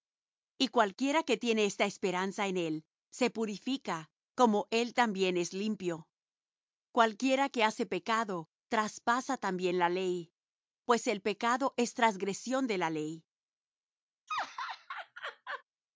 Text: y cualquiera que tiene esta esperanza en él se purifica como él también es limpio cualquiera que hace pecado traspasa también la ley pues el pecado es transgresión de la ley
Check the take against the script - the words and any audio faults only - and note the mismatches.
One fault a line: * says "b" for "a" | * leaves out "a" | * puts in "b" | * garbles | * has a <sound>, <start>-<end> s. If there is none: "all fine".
* has a laugh, 14.3-15.6 s